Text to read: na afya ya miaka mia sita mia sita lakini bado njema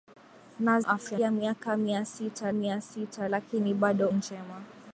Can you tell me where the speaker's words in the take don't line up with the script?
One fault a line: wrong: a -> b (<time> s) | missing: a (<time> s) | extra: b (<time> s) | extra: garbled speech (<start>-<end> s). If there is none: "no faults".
no faults